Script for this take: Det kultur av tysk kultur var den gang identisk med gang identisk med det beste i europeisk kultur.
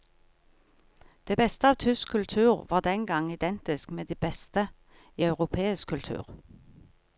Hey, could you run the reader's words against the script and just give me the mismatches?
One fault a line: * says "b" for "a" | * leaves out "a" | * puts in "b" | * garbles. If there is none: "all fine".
* says "beste" for "kultur"
* leaves out "gang identisk med"